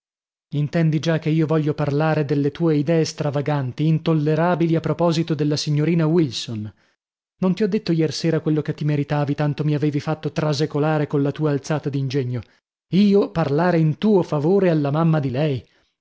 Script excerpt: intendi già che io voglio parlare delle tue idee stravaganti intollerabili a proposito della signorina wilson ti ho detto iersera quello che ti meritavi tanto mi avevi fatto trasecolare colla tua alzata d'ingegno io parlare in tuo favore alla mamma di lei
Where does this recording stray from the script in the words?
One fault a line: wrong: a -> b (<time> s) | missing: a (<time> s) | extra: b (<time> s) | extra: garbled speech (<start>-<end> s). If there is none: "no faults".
extra: non (7.4 s)